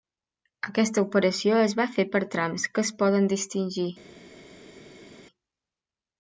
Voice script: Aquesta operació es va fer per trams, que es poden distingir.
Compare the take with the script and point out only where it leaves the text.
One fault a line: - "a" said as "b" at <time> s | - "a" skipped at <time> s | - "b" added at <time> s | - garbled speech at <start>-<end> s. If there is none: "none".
none